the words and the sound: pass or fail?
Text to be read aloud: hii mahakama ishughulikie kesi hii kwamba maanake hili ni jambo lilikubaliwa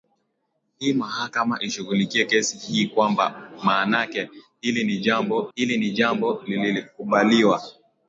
fail